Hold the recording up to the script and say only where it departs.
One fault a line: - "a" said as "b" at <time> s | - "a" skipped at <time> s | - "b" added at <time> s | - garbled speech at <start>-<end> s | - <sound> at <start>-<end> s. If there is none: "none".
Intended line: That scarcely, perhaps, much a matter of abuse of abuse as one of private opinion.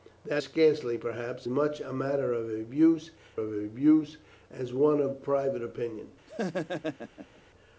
- laugh at 6.3-7.4 s